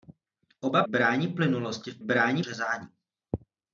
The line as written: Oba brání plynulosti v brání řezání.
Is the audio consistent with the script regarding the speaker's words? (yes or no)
yes